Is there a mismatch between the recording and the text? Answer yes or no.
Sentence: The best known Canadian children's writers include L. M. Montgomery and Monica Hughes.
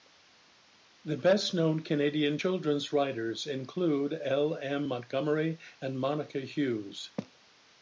no